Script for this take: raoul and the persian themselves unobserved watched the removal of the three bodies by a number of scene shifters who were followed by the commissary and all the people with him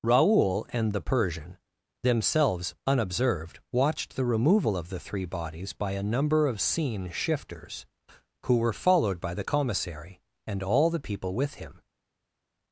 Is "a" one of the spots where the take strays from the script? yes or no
no